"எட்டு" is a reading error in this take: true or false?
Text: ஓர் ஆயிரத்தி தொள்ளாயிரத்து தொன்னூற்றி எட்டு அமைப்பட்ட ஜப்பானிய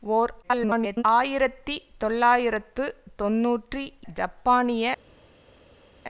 true